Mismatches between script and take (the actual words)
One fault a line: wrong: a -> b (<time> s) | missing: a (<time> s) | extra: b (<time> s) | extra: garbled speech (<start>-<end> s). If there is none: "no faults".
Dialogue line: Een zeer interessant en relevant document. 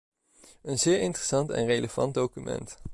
no faults